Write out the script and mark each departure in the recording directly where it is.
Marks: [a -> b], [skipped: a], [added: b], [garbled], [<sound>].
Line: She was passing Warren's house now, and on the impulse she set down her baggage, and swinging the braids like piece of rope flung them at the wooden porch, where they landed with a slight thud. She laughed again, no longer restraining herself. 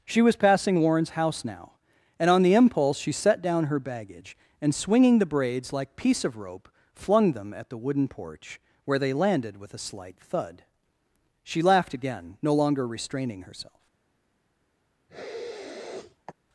She was passing Warren's house now, and on the impulse she set down her baggage, and swinging the braids like piece of rope flung them at the wooden porch, where they landed with a slight thud. She laughed again, no longer restraining herself. [sniff]